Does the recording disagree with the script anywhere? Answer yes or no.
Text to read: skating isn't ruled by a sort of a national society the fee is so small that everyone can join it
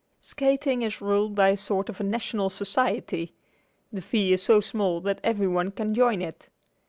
yes